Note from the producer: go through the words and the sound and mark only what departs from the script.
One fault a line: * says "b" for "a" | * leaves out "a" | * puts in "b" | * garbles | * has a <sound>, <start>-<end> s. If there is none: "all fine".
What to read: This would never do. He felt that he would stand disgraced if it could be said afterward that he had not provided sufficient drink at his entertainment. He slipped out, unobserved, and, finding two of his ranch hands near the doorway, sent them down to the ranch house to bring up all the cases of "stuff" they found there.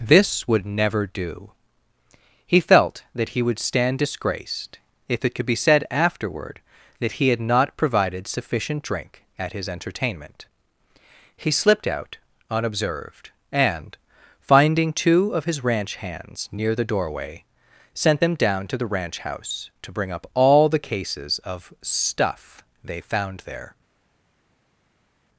all fine